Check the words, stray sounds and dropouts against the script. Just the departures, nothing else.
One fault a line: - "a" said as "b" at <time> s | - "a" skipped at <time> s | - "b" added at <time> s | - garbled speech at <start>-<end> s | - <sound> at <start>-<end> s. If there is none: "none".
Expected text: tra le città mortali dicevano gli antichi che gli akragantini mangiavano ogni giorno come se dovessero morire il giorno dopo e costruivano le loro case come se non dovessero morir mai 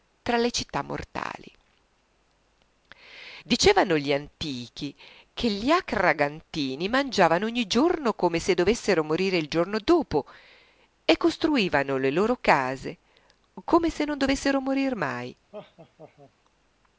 - laugh at 15.5-16.3 s